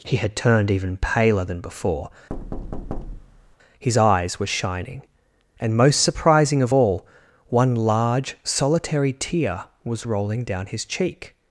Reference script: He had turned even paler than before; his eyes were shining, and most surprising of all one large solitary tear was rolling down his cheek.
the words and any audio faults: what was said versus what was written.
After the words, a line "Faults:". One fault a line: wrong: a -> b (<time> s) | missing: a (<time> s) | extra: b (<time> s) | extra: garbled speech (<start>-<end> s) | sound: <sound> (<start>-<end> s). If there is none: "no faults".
He had turned even paler than before; his eyes were shining, and most surprising of all one large solitary tear was rolling down his cheek.
Faults:
sound: thud (2.3-3.6 s)